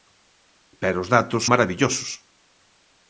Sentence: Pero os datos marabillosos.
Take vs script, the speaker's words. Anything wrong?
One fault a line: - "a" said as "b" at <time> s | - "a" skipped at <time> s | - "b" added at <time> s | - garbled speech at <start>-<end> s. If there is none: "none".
none